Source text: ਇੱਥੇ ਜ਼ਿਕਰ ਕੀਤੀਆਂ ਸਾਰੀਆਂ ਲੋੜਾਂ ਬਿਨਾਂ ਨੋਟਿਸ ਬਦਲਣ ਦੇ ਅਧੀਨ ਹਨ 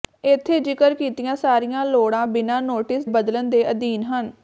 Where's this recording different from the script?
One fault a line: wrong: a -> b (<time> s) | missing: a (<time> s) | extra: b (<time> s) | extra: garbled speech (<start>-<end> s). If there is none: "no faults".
no faults